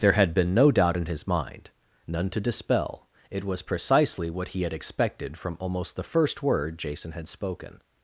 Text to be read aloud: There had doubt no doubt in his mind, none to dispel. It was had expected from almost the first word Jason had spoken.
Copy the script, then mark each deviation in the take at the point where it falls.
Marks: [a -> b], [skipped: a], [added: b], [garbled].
There had [doubt -> been] no doubt in his mind, none to dispel. It was [added: precisely what he] had expected from almost the first word Jason had spoken.